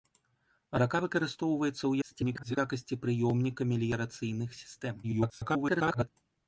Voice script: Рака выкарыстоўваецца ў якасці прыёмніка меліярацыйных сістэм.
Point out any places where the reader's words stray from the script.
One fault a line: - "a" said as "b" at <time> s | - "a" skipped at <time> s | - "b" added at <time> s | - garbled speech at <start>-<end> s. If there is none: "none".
- garbled speech at 2.0-2.6 s
- garbled speech at 5.0-6.1 s